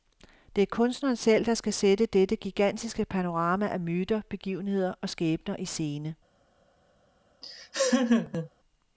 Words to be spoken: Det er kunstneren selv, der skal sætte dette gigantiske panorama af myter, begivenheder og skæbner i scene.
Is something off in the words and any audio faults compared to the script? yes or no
yes